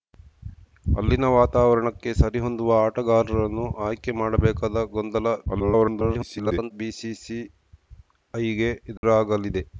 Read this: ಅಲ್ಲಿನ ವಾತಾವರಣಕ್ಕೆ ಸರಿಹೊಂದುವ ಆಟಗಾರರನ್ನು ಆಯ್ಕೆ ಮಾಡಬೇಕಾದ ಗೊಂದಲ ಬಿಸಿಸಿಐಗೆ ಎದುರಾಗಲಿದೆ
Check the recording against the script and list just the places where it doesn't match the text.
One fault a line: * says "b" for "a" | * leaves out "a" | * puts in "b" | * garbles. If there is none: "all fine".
* garbles